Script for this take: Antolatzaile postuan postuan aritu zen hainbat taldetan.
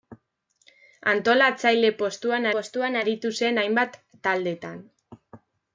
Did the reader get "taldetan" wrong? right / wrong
right